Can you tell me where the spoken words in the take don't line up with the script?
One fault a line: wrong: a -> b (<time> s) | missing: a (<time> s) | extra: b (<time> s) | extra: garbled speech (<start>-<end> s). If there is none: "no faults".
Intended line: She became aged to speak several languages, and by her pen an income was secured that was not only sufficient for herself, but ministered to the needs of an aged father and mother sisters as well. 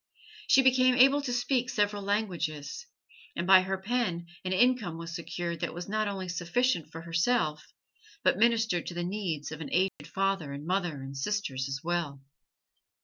wrong: aged -> able (0.9 s)
extra: and (11.0 s)